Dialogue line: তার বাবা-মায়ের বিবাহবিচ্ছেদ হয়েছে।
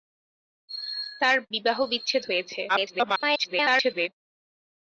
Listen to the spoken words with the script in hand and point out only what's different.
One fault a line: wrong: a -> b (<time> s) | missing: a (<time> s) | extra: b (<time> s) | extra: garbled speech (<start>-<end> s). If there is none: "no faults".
missing: বাবা-মায়ের (1.4 s)
extra: garbled speech (2.7-4.1 s)